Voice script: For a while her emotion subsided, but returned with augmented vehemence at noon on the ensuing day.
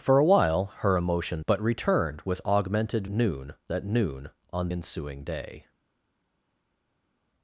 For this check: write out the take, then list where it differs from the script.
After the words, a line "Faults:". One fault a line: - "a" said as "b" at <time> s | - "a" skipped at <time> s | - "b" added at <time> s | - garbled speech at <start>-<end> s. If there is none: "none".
For a while her emotion but returned with augmented noon at noon on ensuing day.
Faults:
- "subsided" skipped at 1.4 s
- "vehemence" said as "noon" at 3.1 s
- "the" skipped at 4.7 s